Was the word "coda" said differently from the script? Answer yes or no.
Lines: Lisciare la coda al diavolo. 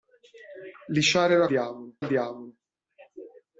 yes